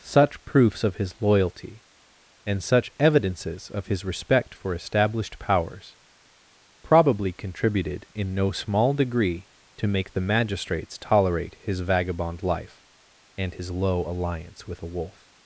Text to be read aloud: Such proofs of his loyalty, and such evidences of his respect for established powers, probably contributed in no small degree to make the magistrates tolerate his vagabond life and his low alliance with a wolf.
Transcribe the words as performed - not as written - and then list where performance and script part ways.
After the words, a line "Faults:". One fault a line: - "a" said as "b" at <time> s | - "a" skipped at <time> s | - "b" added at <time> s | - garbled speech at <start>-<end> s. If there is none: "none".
Such proofs of his loyalty, and such evidences of his respect for established powers, probably contributed in no small degree to make the magistrates tolerate his vagabond life and his low alliance with a wolf.
Faults:
none